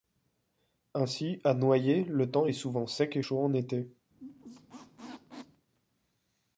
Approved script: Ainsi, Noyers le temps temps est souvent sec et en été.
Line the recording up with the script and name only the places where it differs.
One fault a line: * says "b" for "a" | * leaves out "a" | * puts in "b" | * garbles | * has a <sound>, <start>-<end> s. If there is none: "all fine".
* puts in "à"
* leaves out "temps"
* puts in "chaud"
* has a squeak, 4.1-5.7 s